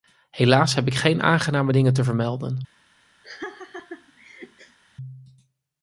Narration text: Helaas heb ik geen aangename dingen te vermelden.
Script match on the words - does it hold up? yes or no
yes